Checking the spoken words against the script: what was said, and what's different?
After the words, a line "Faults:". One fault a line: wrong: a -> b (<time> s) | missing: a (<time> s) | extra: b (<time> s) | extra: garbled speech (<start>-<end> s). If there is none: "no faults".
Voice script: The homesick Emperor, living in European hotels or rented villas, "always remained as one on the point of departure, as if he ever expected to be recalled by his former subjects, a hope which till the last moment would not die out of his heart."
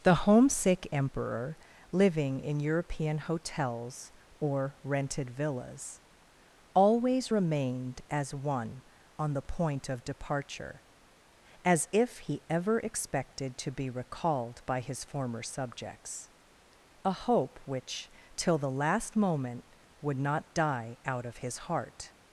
The homesick Emperor, living in European hotels or rented villas, "always remained as one on the point of departure, as if he ever expected to be recalled by his former subjects, a hope which till the last moment would not die out of his heart."
Faults:
no faults